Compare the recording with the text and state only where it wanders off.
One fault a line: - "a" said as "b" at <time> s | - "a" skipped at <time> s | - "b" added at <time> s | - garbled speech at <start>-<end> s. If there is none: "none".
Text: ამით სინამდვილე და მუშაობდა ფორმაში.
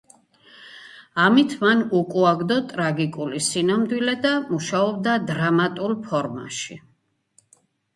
- "მან უკუაგდო ტრაგიკული" added at 1.6 s
- "დრამატულ" added at 5.3 s